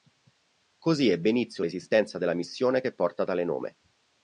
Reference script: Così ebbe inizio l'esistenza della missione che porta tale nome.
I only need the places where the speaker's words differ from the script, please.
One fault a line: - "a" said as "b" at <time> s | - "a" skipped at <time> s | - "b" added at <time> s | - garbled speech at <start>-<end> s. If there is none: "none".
none